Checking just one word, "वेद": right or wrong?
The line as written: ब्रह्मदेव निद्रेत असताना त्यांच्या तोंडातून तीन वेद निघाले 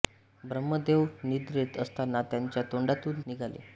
wrong